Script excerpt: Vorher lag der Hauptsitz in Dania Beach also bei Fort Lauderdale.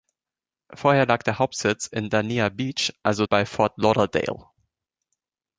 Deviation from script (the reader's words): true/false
false